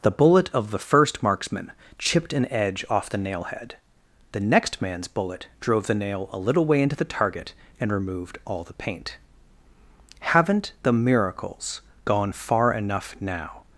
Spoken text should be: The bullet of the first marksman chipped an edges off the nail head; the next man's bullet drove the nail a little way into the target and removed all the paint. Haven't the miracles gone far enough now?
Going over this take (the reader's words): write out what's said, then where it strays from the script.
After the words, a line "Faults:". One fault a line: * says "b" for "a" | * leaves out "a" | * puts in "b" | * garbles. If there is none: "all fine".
The bullet of the first marksman chipped an edge off the nail head; the next man's bullet drove the nail a little way into the target and removed all the paint. Haven't the miracles gone far enough now?
Faults:
* says "edge" for "edges"